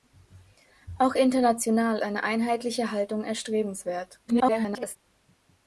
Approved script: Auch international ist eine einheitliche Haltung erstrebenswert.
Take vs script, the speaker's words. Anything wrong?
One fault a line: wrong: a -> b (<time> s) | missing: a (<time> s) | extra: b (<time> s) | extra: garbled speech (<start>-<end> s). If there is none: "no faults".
missing: ist (2.0 s)
extra: garbled speech (4.3-5.0 s)